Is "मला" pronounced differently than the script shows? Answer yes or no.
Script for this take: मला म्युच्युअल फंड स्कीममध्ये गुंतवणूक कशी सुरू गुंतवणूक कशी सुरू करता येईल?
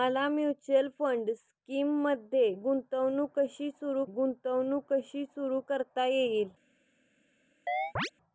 no